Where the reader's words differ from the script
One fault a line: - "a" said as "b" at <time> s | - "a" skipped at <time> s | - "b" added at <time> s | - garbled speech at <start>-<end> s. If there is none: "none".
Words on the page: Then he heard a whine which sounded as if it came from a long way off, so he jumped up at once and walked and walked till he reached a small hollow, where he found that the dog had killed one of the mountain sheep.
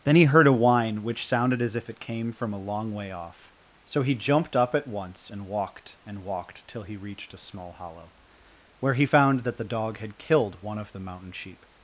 none